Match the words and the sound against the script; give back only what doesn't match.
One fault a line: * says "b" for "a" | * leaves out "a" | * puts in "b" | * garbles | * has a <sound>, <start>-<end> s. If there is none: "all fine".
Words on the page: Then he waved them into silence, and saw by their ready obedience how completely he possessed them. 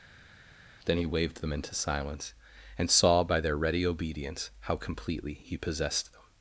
all fine